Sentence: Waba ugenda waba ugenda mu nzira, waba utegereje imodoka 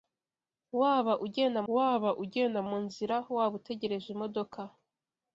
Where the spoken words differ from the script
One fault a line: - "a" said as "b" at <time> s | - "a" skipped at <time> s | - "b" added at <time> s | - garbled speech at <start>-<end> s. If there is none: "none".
none